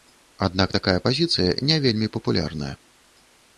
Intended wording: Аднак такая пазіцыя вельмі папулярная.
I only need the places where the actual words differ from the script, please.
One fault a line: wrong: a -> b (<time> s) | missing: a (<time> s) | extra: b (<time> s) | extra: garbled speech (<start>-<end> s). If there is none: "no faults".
extra: не (1.7 s)